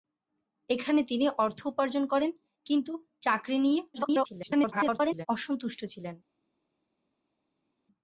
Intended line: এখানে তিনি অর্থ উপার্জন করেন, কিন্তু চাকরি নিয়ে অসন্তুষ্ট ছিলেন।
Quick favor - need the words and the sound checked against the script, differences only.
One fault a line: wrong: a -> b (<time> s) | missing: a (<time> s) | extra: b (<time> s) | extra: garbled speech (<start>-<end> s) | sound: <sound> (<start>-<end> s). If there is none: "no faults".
extra: garbled speech (3.9-5.3 s)